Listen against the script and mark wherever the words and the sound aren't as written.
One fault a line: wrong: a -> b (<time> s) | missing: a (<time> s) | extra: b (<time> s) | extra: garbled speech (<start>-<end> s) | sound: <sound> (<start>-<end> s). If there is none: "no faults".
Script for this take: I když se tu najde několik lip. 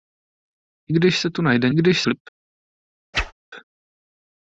wrong: několik -> když (1.7 s)
sound: whoosh (3.1-3.3 s)